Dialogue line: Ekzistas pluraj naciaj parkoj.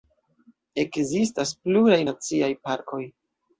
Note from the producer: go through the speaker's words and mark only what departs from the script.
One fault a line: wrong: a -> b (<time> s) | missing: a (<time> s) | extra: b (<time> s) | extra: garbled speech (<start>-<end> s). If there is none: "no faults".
no faults